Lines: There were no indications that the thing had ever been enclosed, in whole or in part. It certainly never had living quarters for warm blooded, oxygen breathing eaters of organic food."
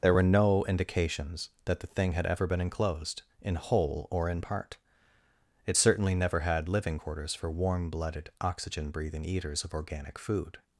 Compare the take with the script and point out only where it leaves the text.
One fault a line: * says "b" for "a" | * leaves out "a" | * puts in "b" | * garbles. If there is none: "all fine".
all fine